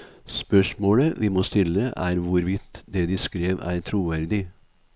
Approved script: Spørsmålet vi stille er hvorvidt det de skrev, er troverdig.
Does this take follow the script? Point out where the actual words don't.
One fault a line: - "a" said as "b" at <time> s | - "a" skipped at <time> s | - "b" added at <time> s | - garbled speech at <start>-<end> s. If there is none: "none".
- "må" added at 1.3 s